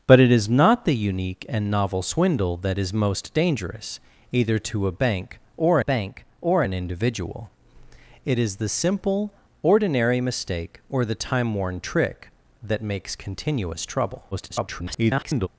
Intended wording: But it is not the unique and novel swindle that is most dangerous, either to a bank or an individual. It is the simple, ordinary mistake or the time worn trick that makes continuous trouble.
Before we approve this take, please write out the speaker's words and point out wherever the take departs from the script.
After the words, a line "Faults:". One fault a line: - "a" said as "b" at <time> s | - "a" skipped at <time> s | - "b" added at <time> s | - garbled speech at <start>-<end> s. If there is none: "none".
But it is not the unique and novel swindle that is most dangerous, either to a bank or bank or an individual. It is the simple, ordinary mistake or the time worn trick that makes continuous trouble. [garbled]
Faults:
- "bank or" added at 5.8 s
- garbled speech at 14.3-15.5 s